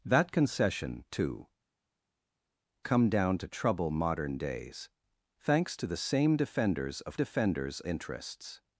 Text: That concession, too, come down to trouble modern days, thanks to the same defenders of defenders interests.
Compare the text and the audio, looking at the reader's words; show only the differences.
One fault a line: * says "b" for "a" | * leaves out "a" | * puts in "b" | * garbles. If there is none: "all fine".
all fine